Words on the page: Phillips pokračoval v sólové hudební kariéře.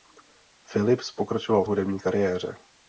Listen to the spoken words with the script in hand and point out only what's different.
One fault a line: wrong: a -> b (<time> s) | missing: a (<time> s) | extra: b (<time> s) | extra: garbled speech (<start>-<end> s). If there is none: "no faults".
missing: sólové (1.7 s)